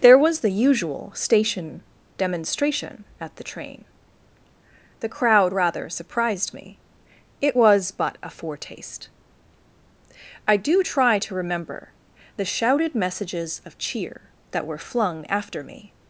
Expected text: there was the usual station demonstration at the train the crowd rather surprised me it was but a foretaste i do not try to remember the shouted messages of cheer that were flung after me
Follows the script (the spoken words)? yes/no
no